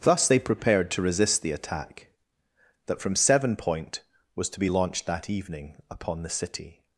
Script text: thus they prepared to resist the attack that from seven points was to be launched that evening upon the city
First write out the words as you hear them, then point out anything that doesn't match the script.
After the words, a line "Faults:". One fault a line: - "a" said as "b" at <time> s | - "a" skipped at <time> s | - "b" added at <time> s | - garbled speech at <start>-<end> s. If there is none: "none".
thus they prepared to resist the attack that from seven point was to be launched that evening upon the city
Faults:
- "points" said as "point" at 3.5 s